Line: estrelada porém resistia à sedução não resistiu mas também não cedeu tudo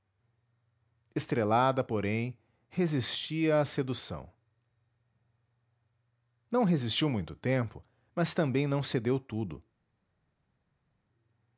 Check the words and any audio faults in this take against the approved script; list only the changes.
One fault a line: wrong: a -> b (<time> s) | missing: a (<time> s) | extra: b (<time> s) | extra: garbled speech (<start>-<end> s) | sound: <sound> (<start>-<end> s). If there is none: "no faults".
extra: muito tempo (7.1 s)